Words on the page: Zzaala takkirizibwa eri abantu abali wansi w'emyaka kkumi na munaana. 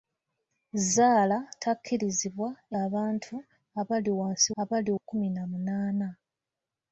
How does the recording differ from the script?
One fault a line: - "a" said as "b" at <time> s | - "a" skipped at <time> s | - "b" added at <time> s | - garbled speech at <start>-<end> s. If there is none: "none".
- "eri" skipped at 2.5 s
- "w'emyaka" said as "abali" at 4.6 s